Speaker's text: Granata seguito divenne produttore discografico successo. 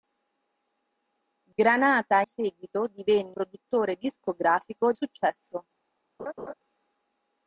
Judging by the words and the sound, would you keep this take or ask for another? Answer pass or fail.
fail